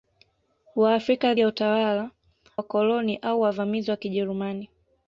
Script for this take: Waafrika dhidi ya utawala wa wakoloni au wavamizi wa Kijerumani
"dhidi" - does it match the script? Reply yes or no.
no